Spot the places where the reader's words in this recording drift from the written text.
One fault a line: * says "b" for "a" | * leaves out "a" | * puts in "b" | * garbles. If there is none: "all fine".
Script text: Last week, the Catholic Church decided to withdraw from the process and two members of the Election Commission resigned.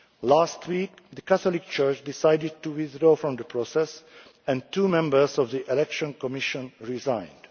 all fine